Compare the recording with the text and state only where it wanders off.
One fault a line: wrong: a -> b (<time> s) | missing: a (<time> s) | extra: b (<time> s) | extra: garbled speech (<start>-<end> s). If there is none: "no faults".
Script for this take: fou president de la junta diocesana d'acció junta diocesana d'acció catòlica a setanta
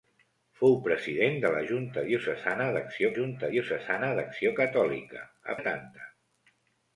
no faults